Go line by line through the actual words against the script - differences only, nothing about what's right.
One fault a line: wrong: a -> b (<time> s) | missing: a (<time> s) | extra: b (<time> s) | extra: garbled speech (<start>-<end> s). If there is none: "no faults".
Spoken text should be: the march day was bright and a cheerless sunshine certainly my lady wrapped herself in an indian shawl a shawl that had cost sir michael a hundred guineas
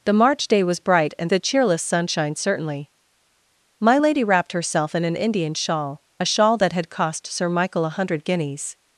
no faults